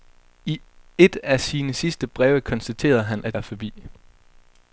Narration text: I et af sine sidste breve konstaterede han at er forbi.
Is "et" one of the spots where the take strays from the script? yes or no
no